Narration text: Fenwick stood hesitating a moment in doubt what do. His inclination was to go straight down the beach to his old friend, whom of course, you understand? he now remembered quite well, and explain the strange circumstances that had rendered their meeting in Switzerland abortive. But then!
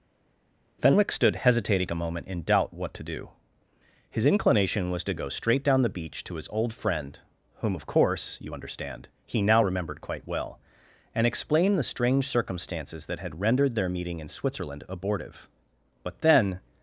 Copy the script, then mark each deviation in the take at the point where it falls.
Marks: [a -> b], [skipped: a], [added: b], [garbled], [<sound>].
Fenwick stood hesitating a moment in doubt what [added: to] do. His inclination was to go straight down the beach to his old friend, whom of course, you understand? he now remembered quite well, and explain the strange circumstances that had rendered their meeting in Switzerland abortive. But then!